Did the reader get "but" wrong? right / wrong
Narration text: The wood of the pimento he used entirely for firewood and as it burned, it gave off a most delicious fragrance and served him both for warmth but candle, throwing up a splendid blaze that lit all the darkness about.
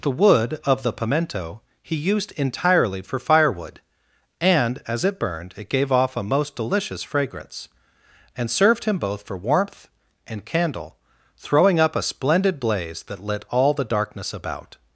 wrong